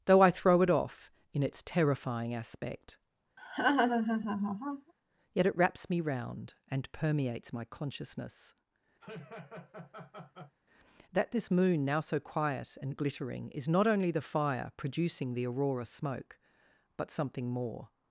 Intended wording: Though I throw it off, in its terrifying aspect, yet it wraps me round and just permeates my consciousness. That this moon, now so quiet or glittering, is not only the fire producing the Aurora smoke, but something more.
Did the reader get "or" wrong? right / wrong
wrong